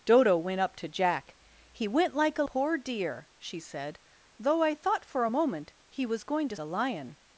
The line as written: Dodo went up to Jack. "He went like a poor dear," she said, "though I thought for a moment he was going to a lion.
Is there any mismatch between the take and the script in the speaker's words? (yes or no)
no